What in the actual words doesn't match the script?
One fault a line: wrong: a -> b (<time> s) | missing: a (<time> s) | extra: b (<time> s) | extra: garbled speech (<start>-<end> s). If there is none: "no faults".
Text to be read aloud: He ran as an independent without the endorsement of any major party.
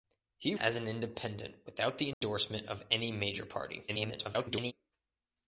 missing: ran (0.6 s)
extra: garbled speech (3.9-4.7 s)